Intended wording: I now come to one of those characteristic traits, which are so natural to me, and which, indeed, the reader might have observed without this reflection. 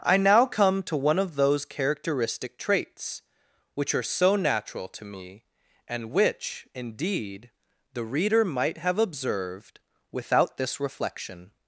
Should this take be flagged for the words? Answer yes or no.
no